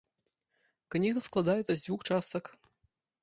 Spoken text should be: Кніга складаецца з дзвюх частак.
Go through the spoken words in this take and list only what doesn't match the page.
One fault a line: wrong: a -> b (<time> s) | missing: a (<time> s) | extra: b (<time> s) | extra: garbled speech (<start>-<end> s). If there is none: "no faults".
no faults